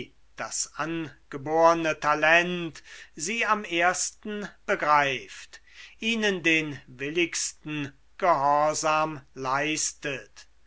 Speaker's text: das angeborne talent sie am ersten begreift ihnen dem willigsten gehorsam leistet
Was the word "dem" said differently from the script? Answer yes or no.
yes